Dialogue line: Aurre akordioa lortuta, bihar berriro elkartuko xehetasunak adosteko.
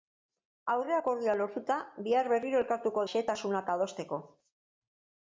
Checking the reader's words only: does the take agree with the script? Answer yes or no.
yes